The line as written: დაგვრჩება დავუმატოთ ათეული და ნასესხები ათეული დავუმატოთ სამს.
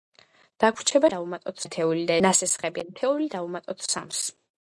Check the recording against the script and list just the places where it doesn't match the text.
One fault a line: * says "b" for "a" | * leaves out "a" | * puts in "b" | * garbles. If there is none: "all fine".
all fine